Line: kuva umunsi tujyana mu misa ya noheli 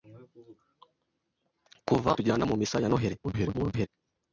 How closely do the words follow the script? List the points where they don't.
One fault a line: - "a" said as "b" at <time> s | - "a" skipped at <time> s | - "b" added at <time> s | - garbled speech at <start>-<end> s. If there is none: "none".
- "umunsi" skipped at 2.1 s
- garbled speech at 3.2-3.9 s